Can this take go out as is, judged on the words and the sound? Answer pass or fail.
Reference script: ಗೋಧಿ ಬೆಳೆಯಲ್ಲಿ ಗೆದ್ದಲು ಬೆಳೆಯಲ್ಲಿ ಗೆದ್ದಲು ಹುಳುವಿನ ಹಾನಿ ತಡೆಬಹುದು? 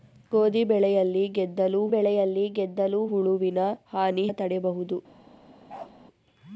fail